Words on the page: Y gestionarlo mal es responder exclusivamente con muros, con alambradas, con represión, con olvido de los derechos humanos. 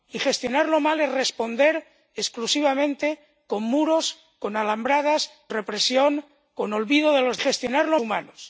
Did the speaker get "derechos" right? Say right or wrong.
wrong